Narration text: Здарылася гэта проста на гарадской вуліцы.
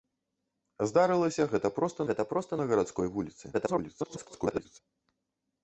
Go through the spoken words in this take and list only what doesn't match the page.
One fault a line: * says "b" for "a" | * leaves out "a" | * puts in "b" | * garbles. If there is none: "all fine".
* puts in "гэта проста"
* garbles